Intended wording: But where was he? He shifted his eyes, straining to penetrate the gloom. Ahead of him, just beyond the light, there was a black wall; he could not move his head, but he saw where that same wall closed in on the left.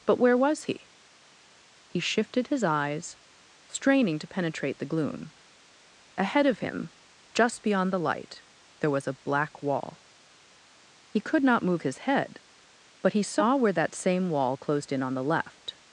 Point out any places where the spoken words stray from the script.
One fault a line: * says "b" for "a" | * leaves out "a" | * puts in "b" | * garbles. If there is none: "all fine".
all fine